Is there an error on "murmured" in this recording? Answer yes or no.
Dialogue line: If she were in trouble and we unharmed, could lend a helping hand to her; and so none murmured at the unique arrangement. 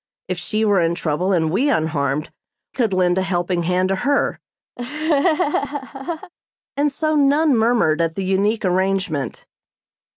no